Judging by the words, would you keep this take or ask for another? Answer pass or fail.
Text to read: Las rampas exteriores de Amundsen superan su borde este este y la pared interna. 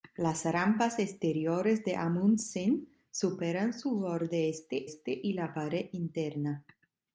pass